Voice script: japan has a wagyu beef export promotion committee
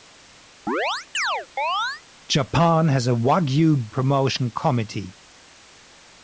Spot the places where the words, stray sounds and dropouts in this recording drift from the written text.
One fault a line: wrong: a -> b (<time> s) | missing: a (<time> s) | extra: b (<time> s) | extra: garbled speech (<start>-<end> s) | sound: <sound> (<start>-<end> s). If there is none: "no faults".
sound: chirp (0.7-2.0 s)
missing: beef export (3.9 s)